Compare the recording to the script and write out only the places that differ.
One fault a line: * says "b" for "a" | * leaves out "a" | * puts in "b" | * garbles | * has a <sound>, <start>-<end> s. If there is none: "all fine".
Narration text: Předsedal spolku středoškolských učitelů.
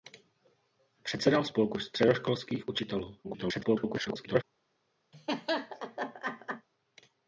* garbles
* has a laugh, 5.1-6.7 s